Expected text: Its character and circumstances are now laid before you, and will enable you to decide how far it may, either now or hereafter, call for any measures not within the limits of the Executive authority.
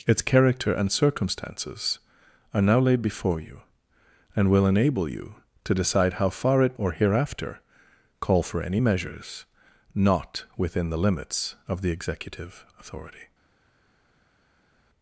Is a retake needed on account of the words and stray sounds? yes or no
yes